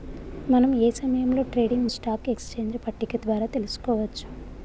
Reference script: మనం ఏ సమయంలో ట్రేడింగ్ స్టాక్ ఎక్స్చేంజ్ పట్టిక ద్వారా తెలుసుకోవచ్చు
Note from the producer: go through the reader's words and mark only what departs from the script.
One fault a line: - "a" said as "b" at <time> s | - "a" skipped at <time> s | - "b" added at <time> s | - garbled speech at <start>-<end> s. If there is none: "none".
none